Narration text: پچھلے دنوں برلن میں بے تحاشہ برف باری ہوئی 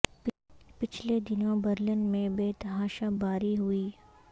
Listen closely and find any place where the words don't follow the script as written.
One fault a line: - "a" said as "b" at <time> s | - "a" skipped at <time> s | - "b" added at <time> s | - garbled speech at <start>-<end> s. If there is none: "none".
- "برف" skipped at 3.1 s